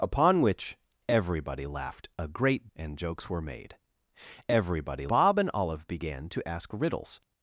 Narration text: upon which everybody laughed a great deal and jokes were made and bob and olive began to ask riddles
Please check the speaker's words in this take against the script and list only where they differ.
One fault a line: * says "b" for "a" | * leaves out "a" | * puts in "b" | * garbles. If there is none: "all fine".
* leaves out "deal"
* says "everybody" for "and"